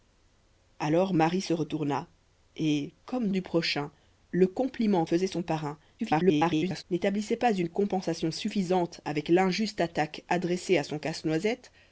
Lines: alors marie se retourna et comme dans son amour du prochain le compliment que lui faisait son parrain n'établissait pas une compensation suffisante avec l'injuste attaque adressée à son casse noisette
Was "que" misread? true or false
true